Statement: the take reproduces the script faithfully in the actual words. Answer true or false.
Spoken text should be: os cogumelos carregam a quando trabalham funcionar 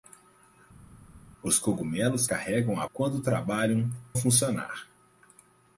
true